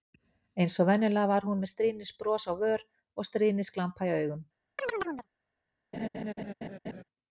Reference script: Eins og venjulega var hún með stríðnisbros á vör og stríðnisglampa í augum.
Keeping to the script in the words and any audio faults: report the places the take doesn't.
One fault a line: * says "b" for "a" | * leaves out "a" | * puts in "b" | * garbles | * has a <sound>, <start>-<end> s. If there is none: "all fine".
* has a chirp, 4.8-5.3 s
* has a laugh, 5.9-7.0 s